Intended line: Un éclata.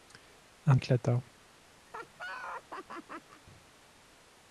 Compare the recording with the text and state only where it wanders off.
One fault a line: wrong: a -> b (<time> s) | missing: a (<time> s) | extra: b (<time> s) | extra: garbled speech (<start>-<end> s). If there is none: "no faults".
no faults